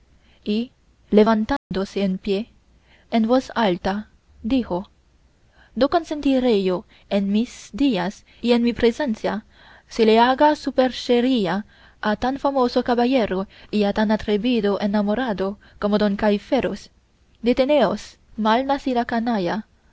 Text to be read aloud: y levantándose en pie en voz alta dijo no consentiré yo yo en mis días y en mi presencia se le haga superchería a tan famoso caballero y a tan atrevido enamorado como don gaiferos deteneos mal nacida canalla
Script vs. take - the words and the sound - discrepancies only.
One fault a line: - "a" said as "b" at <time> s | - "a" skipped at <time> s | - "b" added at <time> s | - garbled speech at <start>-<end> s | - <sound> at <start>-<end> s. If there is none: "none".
- dropout at 1.6-1.7 s
- "yo" skipped at 6.8 s